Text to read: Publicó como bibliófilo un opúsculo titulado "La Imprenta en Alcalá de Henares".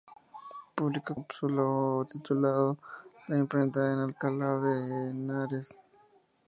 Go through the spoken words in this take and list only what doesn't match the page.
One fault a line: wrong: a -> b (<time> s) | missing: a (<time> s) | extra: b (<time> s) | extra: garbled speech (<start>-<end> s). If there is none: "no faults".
missing: como bibliófilo un (1.1 s)